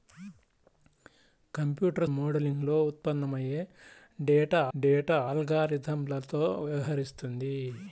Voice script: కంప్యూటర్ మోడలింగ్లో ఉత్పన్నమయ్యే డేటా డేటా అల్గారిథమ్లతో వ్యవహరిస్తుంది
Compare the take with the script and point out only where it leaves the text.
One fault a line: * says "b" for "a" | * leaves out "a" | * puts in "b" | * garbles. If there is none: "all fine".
all fine